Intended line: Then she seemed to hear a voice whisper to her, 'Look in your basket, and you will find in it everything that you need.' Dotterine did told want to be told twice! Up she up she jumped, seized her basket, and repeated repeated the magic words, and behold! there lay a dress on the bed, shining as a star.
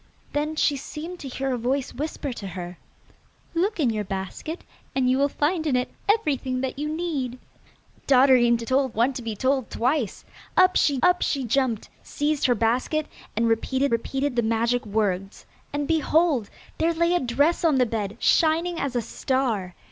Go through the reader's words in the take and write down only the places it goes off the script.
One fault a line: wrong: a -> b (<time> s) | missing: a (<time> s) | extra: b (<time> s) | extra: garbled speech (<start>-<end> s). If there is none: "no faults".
no faults